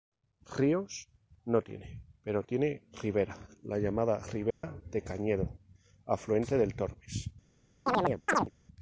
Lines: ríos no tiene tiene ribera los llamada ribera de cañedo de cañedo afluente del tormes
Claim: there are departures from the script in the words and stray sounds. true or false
true